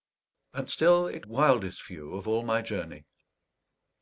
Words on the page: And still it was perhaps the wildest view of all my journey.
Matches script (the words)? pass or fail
fail